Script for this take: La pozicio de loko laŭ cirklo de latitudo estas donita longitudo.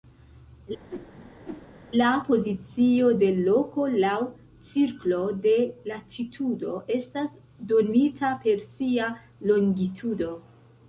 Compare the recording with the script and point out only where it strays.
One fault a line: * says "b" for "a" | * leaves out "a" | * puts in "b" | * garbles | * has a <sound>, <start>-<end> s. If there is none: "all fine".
* has a whoosh, 0.9-1.7 s
* puts in "per sia"